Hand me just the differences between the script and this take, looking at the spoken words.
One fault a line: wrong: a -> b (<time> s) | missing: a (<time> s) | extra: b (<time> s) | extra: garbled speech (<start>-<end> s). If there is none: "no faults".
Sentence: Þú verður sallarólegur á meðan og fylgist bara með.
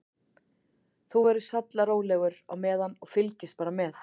no faults